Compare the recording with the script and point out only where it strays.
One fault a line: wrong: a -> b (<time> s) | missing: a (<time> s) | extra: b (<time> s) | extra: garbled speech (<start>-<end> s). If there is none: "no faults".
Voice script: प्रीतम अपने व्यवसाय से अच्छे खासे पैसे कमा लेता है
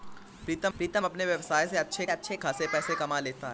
extra: प्रीतम (0.8 s)
extra: अच्छे (2.1 s)